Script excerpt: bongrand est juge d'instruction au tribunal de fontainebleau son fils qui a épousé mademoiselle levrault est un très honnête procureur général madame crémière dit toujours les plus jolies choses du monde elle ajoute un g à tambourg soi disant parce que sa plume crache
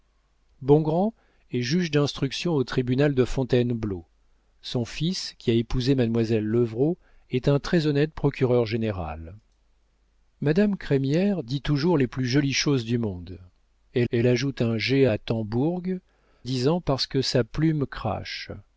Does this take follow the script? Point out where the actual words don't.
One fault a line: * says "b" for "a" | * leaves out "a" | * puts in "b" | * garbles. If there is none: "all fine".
* puts in "elle"
* leaves out "soi"